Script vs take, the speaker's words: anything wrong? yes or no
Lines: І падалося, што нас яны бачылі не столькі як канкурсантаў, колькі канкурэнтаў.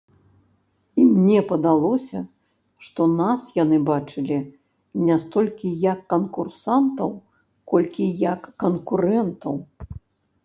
yes